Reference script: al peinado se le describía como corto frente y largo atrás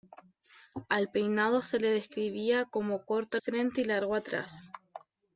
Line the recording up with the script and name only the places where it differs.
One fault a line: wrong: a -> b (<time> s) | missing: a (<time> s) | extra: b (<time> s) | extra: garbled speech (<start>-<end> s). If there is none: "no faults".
no faults